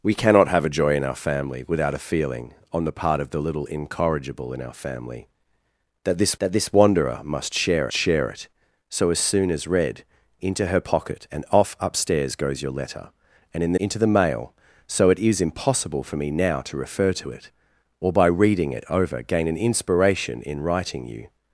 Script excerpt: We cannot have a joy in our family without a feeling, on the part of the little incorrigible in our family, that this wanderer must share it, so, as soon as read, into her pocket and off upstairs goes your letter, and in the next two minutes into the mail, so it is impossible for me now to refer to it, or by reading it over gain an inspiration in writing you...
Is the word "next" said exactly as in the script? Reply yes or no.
no